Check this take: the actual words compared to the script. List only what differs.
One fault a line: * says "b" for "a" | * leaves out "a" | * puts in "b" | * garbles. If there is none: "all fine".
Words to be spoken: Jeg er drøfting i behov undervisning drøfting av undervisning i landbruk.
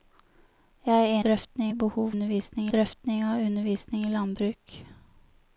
all fine